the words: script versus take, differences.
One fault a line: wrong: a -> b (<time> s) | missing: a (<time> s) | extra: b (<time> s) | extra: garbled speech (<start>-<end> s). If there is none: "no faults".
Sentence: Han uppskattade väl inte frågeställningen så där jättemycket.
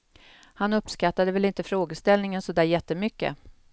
no faults